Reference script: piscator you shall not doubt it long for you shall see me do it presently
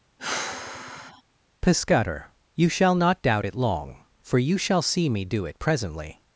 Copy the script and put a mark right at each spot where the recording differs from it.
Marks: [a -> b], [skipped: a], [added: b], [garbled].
piscator you shall not doubt it long for you shall see me do it presently